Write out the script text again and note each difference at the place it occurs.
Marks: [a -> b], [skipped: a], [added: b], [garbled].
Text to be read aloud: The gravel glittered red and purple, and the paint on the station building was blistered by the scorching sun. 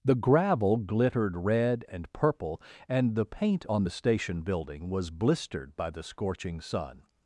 The gravel glittered red and purple, and the paint on the station building was blistered by the scorching sun.